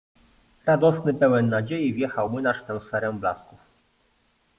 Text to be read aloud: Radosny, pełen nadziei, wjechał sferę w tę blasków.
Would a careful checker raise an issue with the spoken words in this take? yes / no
yes